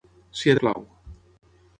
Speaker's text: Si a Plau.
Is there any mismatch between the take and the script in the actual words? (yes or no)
no